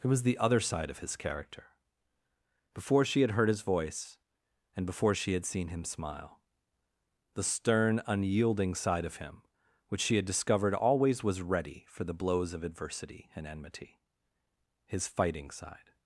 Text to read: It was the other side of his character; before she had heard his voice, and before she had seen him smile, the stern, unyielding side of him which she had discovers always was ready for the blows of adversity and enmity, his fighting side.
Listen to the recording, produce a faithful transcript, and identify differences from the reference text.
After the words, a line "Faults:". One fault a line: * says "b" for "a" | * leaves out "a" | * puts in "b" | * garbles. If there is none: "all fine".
It was the other side of his character; before she had heard his voice, and before she had seen him smile, the stern, unyielding side of him which she had discovered always was ready for the blows of adversity and enmity, his fighting side.
Faults:
* says "discovered" for "discovers"